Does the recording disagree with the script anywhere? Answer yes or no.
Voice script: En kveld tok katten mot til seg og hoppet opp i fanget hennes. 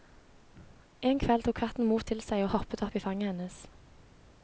no